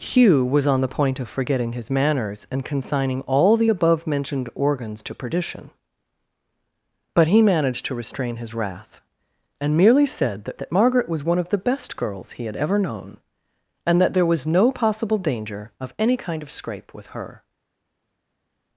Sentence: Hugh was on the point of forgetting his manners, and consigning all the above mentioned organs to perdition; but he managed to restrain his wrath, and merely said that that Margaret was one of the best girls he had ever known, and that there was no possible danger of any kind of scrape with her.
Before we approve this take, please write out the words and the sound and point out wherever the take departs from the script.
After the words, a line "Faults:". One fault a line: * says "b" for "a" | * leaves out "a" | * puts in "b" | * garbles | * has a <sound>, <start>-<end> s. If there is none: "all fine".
Hugh was on the point of forgetting his manners, and consigning all the above mentioned organs to perdition; but he managed to restrain his wrath, and merely said that that Margaret was one of the best girls he had ever known, and that there was no possible danger of any kind of scrape with her.
Faults:
all fine